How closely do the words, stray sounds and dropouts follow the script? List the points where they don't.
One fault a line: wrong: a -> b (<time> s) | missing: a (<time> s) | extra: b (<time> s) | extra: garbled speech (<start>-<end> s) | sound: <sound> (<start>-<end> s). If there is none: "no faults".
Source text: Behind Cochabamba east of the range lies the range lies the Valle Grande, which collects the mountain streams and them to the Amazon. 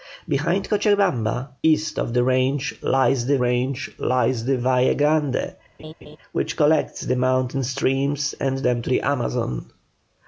sound: laugh (5.8-6.2 s)